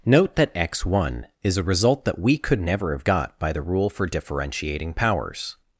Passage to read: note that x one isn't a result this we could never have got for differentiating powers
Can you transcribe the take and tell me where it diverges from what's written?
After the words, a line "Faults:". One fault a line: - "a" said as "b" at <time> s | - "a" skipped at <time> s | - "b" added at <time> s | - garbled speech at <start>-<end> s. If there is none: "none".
note that x one is a result that we could never have got by the rule for differentiating powers
Faults:
- "isn't" said as "is" at 1.4 s
- "this" said as "that" at 2.0 s
- "by the rule" added at 3.4 s